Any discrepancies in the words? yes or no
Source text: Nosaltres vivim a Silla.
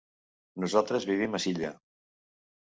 no